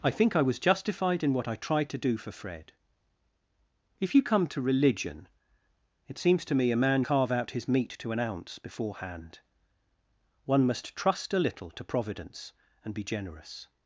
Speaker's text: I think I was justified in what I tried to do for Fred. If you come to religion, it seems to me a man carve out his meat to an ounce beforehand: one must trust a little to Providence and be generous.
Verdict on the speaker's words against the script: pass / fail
pass